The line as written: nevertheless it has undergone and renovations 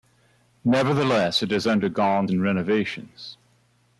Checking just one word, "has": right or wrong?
right